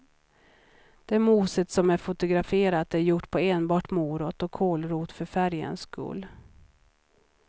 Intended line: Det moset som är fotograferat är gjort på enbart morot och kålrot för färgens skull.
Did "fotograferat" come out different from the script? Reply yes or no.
no